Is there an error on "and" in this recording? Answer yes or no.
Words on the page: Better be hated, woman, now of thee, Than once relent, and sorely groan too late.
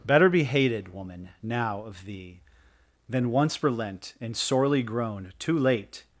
no